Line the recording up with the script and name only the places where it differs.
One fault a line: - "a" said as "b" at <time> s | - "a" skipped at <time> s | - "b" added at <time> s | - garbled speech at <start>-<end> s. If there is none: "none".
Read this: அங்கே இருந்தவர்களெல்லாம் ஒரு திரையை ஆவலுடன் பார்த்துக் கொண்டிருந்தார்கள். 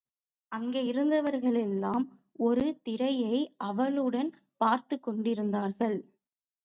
none